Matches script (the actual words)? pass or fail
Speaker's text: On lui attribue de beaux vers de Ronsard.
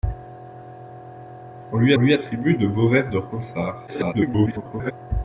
fail